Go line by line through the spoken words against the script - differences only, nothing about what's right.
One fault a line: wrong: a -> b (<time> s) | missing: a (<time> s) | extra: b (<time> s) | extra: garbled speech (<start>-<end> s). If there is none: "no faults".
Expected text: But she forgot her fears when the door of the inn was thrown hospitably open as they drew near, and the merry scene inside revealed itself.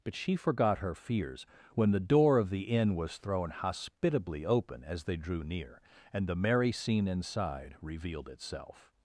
no faults